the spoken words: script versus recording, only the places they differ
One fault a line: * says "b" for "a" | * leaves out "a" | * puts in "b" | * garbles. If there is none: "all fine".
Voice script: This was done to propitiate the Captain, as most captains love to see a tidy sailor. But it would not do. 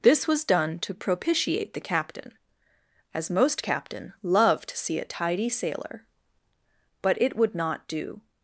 * says "captain" for "captains"